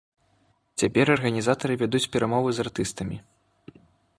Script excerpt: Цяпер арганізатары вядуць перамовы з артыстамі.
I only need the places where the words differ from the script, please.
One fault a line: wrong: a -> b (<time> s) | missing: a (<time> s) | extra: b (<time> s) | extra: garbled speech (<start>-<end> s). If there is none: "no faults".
no faults